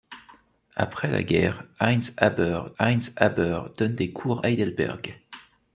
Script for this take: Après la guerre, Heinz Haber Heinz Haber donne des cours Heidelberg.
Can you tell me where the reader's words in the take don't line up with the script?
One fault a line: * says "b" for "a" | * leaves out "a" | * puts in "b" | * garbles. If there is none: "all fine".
all fine